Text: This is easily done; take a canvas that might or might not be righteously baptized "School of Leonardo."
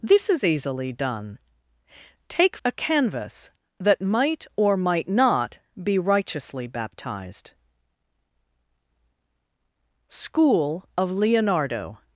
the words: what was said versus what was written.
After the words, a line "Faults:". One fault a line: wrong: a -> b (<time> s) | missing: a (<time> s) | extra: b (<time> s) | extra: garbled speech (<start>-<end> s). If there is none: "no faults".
This is easily done; take a canvas that might or might not be righteously baptized "School of Leonardo."
Faults:
no faults